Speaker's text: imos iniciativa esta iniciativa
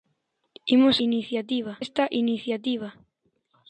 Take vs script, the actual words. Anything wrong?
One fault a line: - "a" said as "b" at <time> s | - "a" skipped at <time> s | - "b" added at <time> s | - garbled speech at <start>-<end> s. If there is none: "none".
none